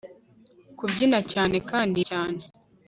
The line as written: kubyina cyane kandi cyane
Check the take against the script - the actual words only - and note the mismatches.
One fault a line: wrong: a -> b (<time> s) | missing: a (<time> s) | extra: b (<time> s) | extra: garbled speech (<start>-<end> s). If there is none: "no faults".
no faults